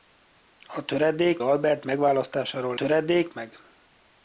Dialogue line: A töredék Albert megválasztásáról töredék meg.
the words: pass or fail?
pass